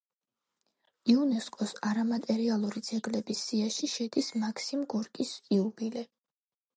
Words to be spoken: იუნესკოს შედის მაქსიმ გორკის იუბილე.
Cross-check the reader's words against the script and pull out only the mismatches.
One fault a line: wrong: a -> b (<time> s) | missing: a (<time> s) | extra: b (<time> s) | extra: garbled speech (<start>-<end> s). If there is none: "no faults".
extra: არამატერიალური ძეგლების სიაში (1.9 s)